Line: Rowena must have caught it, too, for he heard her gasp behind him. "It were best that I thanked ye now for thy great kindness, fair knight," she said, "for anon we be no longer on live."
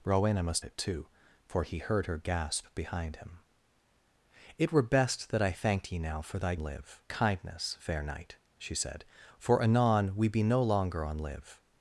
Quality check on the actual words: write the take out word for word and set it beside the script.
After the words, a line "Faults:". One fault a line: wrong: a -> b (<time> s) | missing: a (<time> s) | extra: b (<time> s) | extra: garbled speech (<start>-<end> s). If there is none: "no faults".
Rowena must it, too, for he heard her gasp behind him. "It were best that I thanked ye now for thy live kindness, fair knight," she said, "for anon we be no longer on live."
Faults:
missing: have caught (0.7 s)
wrong: great -> live (6.6 s)